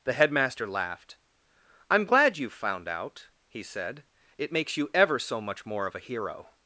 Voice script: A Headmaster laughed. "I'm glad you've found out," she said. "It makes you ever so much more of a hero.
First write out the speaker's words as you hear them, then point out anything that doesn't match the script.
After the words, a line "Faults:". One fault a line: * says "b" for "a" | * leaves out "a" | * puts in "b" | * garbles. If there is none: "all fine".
The Headmaster laughed. "I'm glad you've found out," he said. "It makes you ever so much more of a hero.
Faults:
* says "The" for "A"
* says "he" for "she"